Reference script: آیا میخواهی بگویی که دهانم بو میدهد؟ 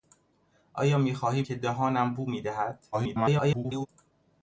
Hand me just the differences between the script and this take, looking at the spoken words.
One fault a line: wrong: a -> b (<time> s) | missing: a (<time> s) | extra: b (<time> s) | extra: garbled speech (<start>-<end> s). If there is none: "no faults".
missing: بگویی (1.4 s)
extra: garbled speech (2.9-3.9 s)